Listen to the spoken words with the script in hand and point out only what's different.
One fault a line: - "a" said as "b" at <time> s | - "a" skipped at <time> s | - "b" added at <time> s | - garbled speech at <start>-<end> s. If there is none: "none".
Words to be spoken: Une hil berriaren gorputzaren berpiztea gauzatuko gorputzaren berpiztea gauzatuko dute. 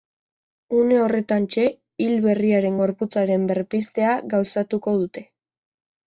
- "horretantxe" added at 1.0 s
- "gorputzaren berpiztea gauzatuko" skipped at 5.0 s